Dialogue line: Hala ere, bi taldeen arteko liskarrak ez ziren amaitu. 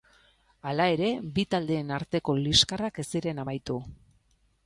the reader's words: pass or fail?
pass